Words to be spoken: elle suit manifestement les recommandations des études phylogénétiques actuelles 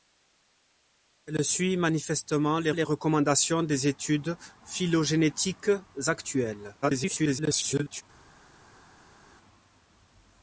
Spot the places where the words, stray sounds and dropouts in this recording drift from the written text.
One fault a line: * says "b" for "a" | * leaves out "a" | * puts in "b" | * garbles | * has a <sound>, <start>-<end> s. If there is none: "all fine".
* puts in "les"
* garbles